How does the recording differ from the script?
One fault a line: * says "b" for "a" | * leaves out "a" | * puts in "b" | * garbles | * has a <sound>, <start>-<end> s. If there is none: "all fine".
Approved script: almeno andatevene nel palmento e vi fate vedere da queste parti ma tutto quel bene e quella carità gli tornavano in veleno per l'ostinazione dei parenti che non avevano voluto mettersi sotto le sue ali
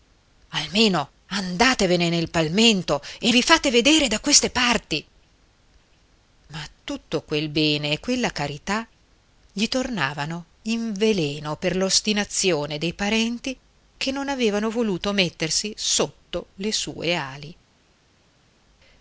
all fine